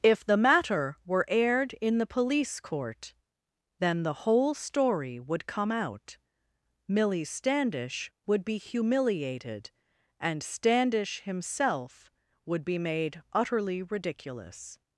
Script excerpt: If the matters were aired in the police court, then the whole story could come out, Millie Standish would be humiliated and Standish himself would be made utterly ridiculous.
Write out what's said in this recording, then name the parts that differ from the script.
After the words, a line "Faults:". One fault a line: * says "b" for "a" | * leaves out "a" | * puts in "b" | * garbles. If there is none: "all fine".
If the matter were aired in the police court, then the whole story would come out, Millie Standish would be humiliated and Standish himself would be made utterly ridiculous.
Faults:
* says "matter" for "matters"
* says "would" for "could"